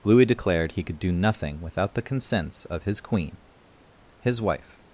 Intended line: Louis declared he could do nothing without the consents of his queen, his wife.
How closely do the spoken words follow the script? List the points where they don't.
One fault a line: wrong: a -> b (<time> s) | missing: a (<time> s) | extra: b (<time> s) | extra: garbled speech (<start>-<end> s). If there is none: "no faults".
no faults